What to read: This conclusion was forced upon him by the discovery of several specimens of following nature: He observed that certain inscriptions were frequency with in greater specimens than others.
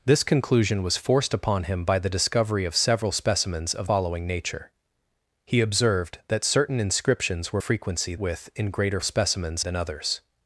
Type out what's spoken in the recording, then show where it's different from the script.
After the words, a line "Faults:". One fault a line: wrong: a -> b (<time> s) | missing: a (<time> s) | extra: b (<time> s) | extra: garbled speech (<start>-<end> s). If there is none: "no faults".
This conclusion was forced upon him by the discovery of several specimens of following nature: He observed that certain inscriptions were frequency with in greater specimens than others.
Faults:
no faults